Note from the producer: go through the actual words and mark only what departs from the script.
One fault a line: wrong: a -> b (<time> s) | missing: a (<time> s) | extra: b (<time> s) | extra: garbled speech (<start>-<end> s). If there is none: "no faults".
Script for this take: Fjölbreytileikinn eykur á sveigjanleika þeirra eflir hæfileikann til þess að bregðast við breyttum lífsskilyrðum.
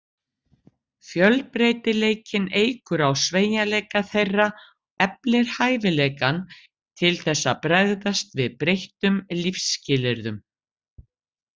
no faults